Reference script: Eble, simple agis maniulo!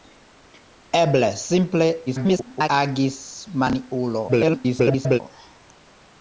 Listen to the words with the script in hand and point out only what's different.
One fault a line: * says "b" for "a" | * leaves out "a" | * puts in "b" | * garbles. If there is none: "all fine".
* garbles
* garbles